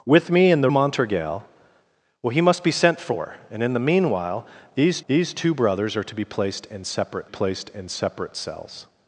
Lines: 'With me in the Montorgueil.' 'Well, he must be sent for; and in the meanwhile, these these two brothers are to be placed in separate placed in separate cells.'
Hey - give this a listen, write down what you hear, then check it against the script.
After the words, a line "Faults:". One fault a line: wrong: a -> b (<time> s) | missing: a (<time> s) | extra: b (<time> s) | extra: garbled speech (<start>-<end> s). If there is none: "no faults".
'With me in the Montorgueil.' 'Well, he must be sent for; and in the meanwhile, these these two brothers are to be placed in separate placed in separate cells.'
Faults:
no faults